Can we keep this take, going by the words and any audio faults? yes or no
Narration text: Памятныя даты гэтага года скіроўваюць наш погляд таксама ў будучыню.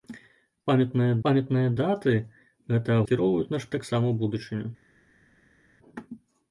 no